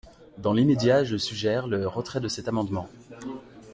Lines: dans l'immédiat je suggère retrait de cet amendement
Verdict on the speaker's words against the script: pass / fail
fail